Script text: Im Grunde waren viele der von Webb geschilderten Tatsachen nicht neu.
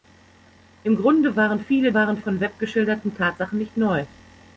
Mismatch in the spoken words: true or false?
true